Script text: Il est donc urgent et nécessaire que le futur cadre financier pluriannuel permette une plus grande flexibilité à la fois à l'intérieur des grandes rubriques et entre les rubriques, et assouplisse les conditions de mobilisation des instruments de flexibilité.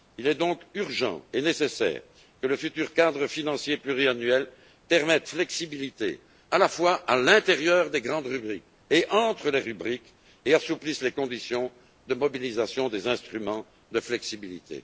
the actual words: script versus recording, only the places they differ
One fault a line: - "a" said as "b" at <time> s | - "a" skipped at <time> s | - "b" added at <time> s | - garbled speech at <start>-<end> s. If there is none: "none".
- "une plus grande" skipped at 5.3 s